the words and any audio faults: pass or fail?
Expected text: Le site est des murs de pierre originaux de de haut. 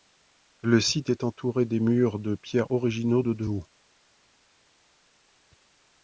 fail